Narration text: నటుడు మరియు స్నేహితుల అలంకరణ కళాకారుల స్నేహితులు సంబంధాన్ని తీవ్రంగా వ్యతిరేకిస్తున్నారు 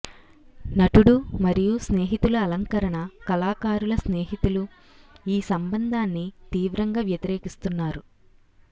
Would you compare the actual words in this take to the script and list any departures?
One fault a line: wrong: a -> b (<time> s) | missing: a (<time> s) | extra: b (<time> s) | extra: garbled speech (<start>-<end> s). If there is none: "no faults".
extra: ఈ (5.3 s)